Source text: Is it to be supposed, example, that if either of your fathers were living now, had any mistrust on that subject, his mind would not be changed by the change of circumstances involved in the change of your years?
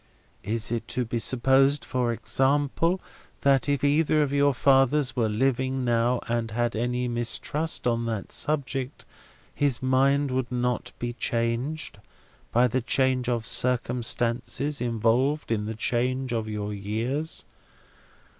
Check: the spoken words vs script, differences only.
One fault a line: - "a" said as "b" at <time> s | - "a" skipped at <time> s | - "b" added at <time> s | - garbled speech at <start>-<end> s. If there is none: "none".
- "for" added at 1.9 s
- "and" added at 6.3 s